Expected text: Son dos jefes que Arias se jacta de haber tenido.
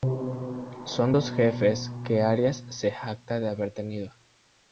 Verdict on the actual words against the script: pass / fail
pass